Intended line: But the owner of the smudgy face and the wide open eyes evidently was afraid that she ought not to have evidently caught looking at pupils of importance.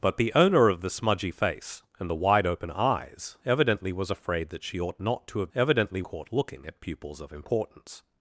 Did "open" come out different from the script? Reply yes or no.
no